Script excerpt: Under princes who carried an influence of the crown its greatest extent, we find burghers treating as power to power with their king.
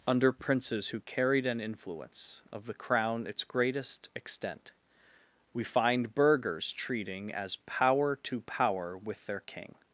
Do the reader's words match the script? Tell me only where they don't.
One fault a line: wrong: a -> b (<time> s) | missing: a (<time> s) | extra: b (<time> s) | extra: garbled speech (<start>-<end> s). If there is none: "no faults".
no faults